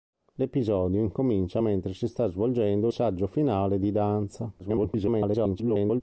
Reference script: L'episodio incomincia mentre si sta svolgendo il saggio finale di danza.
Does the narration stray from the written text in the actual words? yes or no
yes